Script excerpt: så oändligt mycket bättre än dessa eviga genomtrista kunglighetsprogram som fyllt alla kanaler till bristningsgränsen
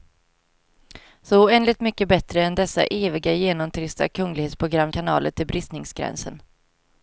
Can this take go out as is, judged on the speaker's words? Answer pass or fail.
fail